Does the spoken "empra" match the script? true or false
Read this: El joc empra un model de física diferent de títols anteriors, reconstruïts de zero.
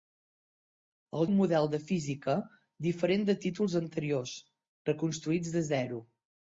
false